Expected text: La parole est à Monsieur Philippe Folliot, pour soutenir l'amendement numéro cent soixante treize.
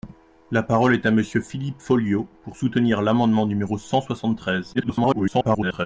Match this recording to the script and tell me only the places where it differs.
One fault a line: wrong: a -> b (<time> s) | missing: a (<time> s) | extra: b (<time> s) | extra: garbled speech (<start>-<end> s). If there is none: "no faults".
extra: garbled speech (4.7-5.9 s)